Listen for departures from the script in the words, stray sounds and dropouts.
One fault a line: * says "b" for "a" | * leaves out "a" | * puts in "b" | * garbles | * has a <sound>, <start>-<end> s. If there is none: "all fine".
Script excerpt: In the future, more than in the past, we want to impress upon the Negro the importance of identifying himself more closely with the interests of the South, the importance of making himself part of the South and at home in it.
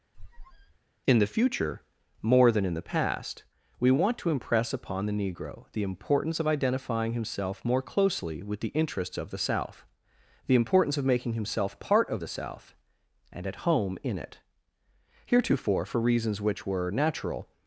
* has a squeak, 0.1-0.8 s
* puts in "Heretofore for reasons which were natural"